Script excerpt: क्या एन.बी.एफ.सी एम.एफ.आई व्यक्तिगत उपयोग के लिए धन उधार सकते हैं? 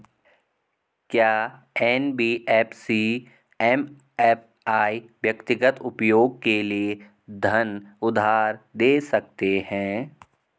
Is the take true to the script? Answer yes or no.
no